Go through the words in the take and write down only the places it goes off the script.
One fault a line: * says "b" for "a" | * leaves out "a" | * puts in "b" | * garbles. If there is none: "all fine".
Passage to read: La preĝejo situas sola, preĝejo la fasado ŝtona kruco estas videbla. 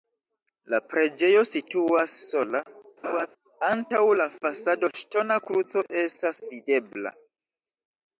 * says "antaŭ" for "preĝejo"